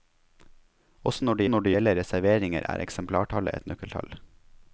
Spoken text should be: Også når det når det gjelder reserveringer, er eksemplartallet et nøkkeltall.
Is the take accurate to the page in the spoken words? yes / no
yes